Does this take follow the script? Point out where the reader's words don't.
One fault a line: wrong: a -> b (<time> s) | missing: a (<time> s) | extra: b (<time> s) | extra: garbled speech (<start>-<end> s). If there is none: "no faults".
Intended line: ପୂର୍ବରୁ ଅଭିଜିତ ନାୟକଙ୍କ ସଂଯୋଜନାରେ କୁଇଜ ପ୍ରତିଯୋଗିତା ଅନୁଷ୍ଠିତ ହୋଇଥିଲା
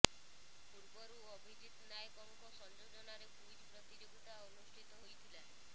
no faults